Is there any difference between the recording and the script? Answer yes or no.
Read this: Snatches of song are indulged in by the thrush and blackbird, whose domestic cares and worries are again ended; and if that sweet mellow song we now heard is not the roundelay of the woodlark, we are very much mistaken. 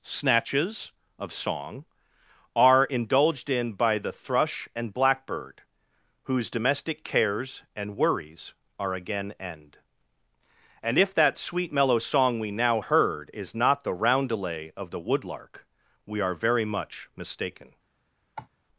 yes